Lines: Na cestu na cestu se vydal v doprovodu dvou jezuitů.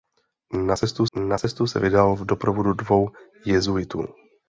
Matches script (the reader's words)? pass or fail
pass